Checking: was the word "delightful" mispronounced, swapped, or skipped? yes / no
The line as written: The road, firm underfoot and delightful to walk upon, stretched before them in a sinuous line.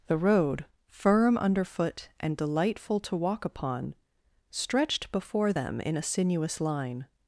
no